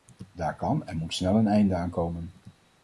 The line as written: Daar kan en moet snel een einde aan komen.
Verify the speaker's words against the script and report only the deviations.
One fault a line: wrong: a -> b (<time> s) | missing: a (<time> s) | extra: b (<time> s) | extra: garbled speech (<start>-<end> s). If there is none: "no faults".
no faults